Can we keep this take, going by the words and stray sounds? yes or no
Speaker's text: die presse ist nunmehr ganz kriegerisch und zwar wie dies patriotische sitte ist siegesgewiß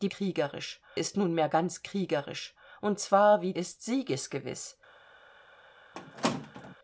no